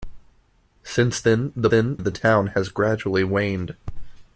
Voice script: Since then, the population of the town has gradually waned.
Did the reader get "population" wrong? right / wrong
wrong